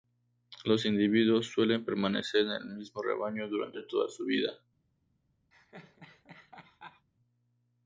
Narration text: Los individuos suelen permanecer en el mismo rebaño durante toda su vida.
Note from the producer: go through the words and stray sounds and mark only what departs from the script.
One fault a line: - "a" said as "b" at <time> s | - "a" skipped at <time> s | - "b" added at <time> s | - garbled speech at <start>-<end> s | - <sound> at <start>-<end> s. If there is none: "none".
- laugh at 5.5-7.1 s